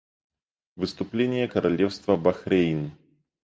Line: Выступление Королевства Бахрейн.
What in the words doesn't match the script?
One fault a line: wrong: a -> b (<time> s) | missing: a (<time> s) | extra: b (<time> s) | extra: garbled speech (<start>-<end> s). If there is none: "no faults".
no faults